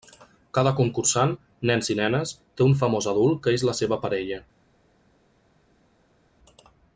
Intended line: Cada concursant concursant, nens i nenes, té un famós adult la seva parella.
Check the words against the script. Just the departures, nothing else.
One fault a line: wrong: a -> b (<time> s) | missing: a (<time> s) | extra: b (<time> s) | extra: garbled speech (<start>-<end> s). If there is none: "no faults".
missing: concursant (1.4 s)
extra: que és (3.5 s)